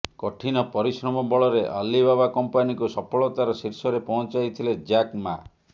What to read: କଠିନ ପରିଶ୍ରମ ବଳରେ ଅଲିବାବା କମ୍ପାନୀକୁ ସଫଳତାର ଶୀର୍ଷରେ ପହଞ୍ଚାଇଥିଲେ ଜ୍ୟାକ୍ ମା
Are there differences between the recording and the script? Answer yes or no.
no